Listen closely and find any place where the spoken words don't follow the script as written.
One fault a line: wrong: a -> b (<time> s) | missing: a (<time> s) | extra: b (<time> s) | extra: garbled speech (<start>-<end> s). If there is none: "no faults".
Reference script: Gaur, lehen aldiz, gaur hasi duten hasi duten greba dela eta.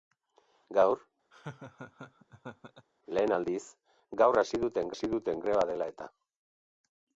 no faults